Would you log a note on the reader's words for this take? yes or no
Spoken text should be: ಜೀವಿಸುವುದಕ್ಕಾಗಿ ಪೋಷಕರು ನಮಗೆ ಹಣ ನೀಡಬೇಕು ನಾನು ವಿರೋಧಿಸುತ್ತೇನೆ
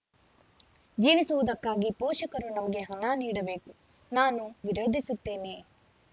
no